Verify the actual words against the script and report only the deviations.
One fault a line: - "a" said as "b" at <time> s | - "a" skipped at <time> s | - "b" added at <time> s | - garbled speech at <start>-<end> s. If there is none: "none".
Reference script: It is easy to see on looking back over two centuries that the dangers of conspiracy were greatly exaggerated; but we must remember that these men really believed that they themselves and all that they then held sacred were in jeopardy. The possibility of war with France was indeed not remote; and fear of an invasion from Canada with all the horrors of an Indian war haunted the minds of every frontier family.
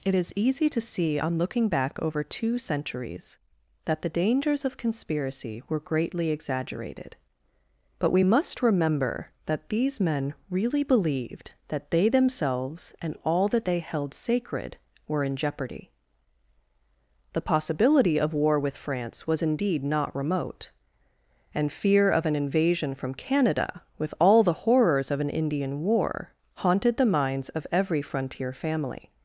- "then" skipped at 13.8 s